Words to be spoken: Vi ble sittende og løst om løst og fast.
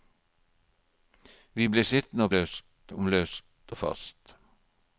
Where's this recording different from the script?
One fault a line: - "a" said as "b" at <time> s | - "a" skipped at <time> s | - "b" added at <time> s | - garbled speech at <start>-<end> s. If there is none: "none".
none